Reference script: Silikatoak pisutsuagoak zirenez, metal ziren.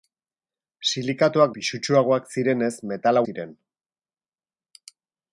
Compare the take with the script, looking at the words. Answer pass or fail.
pass